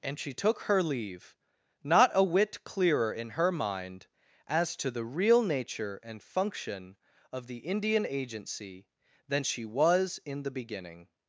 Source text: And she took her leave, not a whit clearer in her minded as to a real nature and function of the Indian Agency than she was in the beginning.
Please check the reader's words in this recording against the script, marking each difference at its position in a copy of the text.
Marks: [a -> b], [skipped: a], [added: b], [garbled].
And she took her leave, not a whit clearer in her [minded -> mind] as to [a -> the] real nature and function of the Indian Agency than she was in the beginning.